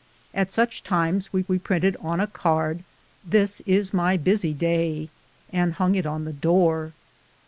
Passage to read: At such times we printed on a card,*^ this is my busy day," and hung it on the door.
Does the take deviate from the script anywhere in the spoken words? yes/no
yes